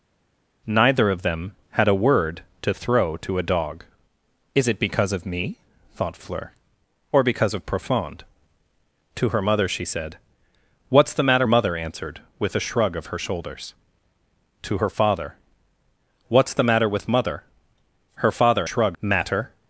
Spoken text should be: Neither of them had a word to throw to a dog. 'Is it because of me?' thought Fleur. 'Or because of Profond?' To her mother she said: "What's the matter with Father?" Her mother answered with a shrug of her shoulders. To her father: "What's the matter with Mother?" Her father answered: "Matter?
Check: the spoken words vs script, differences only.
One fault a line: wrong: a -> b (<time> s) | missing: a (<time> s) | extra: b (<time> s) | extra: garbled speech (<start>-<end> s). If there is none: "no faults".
missing: with Father Her (11.5 s)
wrong: answered -> shrug (18.7 s)